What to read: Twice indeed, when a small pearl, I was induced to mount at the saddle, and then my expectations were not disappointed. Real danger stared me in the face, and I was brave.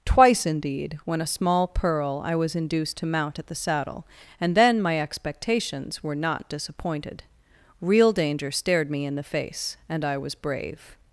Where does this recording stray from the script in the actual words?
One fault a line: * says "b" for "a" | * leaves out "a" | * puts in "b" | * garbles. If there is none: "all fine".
all fine